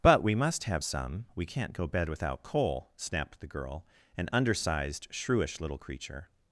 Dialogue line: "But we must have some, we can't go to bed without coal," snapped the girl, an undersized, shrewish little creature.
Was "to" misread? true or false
true